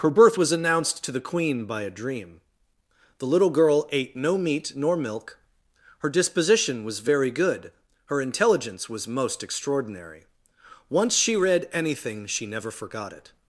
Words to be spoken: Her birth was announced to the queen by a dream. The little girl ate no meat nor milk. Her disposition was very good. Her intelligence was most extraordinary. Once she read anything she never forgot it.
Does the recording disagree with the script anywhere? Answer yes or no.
no